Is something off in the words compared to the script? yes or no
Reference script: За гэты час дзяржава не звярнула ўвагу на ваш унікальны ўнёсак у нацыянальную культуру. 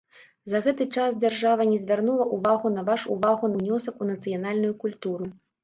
yes